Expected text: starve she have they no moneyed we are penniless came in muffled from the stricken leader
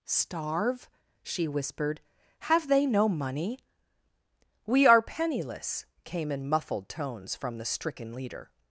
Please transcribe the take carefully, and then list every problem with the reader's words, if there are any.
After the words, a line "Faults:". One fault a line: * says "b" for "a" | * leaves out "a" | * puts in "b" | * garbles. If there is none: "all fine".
starve she whispered have they no money we are penniless came in muffled tones from the stricken leader
Faults:
* puts in "whispered"
* says "money" for "moneyed"
* puts in "tones"